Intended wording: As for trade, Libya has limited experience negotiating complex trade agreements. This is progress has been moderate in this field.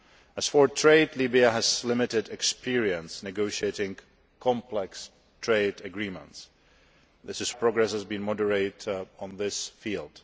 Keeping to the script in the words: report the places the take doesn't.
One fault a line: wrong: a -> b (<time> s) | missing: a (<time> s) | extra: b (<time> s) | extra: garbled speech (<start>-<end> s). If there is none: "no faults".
no faults